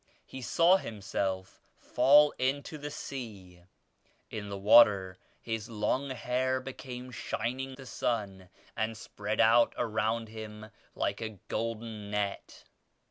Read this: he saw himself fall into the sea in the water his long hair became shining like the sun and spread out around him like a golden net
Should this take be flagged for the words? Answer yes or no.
yes